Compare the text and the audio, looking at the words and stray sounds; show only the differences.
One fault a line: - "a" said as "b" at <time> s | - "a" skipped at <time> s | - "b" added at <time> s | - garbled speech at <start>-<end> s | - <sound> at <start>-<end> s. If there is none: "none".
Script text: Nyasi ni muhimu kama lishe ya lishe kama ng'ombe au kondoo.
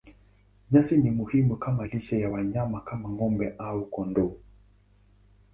- "lishe" said as "wanyama" at 2.3 s